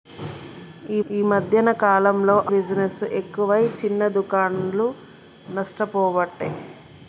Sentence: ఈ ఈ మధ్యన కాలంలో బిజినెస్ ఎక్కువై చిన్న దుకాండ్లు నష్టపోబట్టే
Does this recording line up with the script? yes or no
yes